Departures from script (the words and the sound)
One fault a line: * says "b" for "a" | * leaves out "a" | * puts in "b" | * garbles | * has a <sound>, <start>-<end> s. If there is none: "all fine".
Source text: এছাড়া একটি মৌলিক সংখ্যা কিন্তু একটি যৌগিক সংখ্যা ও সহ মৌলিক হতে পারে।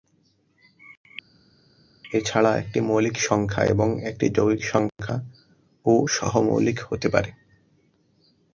* says "এবং" for "কিন্তু"